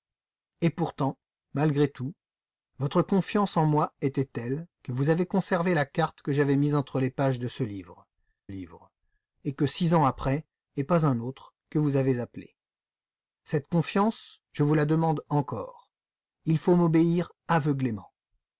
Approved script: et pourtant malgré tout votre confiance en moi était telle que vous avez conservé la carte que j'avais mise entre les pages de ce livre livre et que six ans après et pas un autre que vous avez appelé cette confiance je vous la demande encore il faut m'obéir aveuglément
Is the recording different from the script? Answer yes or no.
no